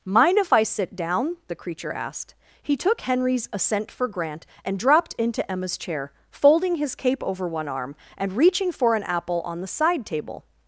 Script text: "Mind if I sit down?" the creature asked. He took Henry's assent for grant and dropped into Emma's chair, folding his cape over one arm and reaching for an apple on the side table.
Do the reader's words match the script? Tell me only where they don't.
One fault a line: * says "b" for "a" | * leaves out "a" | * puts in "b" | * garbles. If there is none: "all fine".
all fine